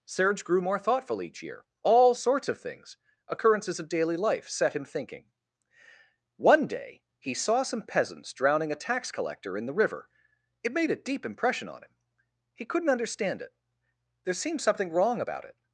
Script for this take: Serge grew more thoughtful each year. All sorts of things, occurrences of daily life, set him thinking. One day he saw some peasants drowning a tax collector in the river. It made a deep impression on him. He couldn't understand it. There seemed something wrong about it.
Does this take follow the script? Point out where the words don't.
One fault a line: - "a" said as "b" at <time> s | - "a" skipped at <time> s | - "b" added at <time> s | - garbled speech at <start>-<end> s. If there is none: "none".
none